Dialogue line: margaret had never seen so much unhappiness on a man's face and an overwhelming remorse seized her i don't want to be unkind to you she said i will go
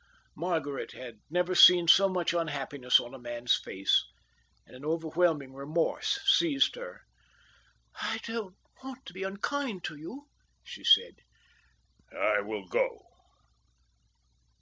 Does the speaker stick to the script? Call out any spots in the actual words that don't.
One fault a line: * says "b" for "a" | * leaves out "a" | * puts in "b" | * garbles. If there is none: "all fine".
all fine